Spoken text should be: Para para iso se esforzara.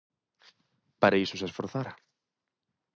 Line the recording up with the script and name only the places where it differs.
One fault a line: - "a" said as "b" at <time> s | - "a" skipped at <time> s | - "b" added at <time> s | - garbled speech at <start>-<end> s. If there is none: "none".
- "para" skipped at 1.2 s